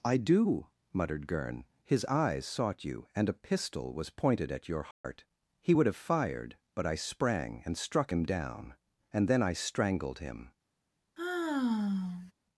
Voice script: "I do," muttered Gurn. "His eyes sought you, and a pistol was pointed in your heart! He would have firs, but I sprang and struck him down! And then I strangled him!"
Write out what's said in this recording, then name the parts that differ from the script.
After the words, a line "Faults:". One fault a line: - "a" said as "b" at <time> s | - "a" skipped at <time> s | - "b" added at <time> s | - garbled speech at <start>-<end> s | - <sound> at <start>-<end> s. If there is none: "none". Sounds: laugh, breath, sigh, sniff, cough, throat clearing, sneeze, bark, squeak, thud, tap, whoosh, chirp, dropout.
"I do," muttered Gurn. "His eyes sought you, and a pistol was pointed at your heart! He would have fired, but I sprang and struck him down! And then I strangled him!"
Faults:
- "in" said as "at" at 4.5 s
- dropout at 4.9-5.0 s
- "firs" said as "fired" at 6.0 s
- sigh at 11.2-12.3 s